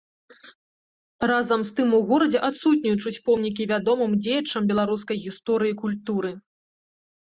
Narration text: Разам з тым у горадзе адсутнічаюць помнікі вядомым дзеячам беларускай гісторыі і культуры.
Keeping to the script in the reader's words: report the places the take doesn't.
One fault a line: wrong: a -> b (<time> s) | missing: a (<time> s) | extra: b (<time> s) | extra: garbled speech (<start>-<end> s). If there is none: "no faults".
no faults